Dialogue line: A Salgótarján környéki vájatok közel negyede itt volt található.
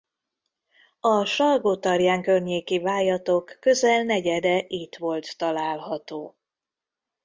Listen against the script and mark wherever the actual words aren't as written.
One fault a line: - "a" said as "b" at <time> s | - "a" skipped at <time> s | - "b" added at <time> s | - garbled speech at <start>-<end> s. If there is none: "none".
none